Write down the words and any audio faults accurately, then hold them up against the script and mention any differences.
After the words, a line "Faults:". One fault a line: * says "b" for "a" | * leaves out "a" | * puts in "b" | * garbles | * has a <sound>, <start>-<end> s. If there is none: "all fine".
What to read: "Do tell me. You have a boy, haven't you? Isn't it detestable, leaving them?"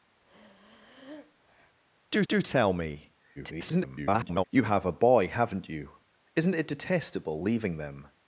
"Do do tell me. [garbled] You have a boy, haven't you? Isn't it detestable, leaving them?"
Faults:
* has a breath, 0.2-1.8 s
* puts in "do"
* garbles